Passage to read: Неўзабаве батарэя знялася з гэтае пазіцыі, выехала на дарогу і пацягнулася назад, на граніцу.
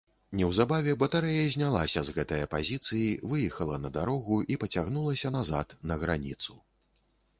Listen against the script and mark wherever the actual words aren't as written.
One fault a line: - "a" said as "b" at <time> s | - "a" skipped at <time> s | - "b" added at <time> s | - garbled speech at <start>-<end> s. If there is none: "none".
none